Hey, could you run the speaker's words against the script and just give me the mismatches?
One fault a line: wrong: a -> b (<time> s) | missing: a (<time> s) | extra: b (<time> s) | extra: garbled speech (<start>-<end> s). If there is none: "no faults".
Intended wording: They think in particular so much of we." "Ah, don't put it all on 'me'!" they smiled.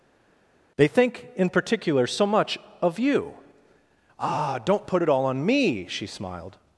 wrong: we -> you (3.0 s)
wrong: they -> she (5.9 s)